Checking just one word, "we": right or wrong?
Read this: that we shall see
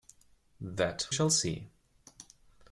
wrong